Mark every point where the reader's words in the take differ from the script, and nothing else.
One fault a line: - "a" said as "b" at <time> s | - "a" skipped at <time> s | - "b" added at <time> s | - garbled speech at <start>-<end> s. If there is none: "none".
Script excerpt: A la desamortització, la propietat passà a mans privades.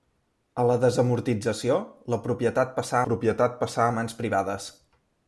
- "propietat passà" added at 3.1 s